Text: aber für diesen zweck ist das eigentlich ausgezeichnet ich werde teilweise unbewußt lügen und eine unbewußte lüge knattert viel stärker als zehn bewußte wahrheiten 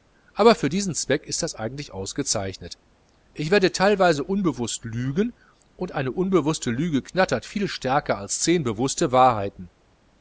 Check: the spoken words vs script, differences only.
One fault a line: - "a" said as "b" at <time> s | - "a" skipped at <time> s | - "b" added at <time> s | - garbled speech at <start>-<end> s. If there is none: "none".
none